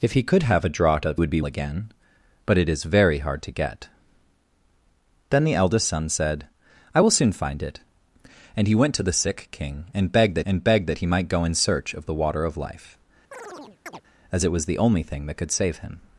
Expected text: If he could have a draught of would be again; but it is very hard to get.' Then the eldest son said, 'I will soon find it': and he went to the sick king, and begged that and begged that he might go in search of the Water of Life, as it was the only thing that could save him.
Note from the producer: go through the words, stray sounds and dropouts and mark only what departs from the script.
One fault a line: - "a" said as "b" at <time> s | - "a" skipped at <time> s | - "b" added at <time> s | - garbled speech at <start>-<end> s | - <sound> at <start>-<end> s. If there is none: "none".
- chirp at 13.3-14.0 s